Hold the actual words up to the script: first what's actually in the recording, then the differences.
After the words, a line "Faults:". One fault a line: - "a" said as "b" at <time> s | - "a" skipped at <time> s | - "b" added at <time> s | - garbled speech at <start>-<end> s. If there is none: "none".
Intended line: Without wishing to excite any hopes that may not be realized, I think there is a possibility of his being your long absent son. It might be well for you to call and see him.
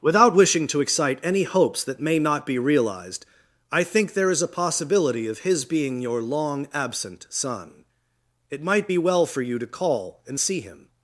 Without wishing to excite any hopes that may not be realized, I think there is a possibility of his being your long absent son. It might be well for you to call and see him.
Faults:
none